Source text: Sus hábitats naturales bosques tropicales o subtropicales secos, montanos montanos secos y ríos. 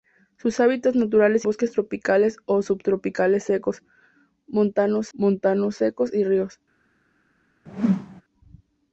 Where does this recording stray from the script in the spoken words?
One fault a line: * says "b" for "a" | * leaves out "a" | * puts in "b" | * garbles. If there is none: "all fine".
all fine